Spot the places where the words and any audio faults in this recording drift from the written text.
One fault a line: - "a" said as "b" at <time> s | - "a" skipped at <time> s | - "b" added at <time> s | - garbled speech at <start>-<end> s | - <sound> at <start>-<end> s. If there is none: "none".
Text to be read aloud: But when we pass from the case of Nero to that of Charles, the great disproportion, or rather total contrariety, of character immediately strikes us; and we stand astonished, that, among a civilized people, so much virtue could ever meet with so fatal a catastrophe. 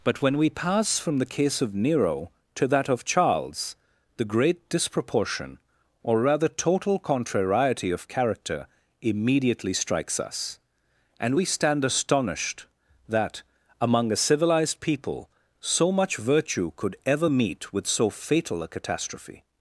none